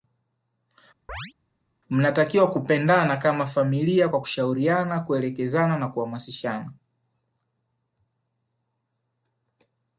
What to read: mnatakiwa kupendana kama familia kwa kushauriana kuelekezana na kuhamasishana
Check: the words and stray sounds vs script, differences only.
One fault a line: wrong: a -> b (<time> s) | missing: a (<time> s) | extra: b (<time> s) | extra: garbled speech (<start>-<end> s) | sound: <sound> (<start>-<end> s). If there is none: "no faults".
sound: chirp (1.1-1.3 s)